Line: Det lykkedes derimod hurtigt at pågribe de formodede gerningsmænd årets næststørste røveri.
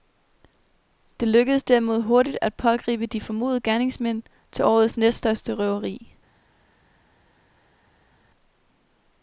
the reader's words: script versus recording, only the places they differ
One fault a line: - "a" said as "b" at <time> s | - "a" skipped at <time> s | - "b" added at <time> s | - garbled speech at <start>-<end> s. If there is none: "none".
- "til" added at 4.5 s